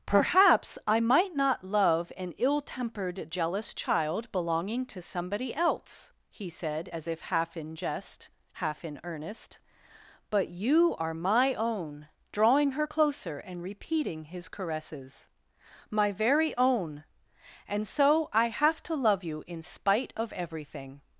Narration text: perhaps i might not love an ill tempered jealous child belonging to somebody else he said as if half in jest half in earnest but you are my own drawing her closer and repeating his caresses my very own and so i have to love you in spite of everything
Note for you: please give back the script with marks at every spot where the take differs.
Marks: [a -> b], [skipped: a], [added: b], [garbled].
perhaps i might not love an ill tempered jealous child belonging to somebody else he said as if half in jest half in earnest but you are my own drawing her closer and repeating his caresses my very own and so i have to love you in spite of everything